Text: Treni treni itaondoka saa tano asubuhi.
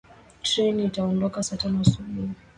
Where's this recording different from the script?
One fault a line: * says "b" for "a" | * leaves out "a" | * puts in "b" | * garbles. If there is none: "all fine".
* leaves out "treni"